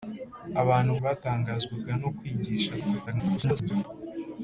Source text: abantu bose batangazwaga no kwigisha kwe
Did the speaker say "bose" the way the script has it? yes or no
no